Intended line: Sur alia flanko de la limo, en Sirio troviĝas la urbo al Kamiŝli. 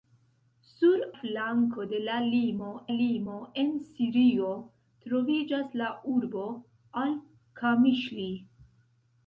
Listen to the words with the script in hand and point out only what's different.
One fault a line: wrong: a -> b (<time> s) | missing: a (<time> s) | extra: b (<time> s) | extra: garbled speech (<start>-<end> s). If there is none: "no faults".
missing: alia (1.0 s)
extra: limo (3.0 s)